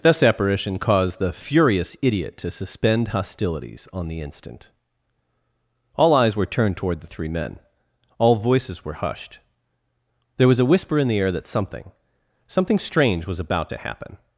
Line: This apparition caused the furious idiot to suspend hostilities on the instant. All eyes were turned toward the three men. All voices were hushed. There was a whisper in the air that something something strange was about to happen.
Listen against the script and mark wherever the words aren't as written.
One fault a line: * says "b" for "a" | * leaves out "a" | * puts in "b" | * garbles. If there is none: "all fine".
all fine